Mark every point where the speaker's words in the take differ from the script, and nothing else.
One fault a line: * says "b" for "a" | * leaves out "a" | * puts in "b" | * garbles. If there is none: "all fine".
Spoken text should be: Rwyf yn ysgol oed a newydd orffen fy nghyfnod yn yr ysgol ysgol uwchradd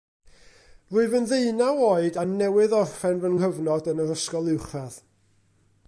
* says "ddeunaw" for "ysgol"
* leaves out "ysgol"